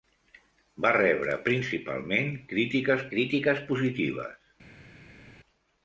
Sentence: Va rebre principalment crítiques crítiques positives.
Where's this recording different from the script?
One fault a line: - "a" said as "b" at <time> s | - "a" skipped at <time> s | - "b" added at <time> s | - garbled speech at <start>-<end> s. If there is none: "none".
none